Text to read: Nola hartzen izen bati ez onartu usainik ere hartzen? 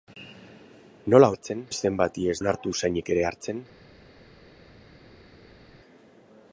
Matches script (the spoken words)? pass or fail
pass